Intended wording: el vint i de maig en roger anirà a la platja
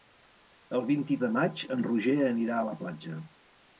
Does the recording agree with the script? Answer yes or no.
yes